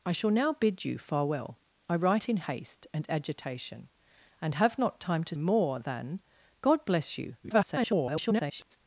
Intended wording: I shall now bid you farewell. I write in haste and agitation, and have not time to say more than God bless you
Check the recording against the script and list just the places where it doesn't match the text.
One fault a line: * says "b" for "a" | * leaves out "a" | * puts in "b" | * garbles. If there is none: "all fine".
* leaves out "say"
* garbles